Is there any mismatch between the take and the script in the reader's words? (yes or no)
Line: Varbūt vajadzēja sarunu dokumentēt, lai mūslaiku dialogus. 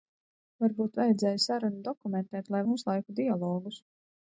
no